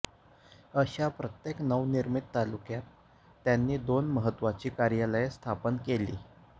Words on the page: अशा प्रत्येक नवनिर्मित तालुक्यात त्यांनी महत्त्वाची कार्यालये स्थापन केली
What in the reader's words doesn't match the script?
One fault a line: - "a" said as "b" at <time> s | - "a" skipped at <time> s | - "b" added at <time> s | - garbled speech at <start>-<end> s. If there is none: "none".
- "दोन" added at 3.8 s